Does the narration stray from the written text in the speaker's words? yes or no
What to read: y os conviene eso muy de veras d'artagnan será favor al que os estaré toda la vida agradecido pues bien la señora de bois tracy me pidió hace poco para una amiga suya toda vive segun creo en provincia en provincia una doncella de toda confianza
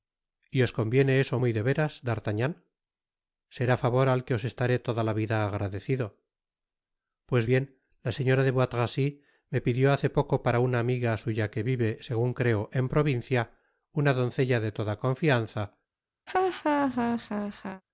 yes